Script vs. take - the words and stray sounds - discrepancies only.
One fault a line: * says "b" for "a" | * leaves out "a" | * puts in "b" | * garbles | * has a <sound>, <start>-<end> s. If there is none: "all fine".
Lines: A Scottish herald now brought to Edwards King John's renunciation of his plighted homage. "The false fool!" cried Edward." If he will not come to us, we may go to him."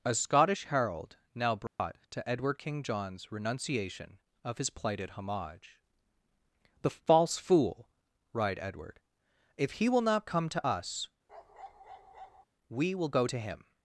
* has a dropout, 1.7-1.8 s
* says "Edward" for "Edwards"
* has a bark, 11.3-12.5 s
* says "will" for "may"